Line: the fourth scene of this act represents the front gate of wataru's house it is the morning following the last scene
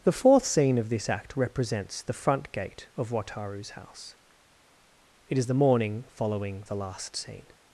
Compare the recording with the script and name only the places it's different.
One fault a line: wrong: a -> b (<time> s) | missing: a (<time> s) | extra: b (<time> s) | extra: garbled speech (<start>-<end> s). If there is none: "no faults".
no faults